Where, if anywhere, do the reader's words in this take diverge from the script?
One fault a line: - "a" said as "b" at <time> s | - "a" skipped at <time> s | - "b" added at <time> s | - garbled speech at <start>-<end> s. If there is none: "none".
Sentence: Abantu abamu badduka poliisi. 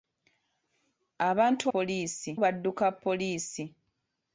- "abamu" said as "poliisi" at 1.7 s